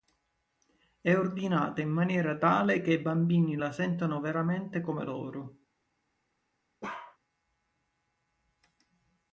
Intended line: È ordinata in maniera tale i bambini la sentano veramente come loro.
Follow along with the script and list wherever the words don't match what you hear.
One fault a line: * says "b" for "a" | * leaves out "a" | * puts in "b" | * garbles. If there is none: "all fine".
* puts in "che"